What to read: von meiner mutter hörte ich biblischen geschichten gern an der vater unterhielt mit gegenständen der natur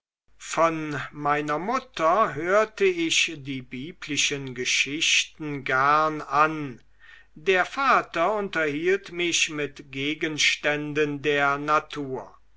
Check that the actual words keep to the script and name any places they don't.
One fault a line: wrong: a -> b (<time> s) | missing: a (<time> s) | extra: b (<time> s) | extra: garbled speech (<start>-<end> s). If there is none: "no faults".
extra: die (3.4 s)
extra: mich (9.1 s)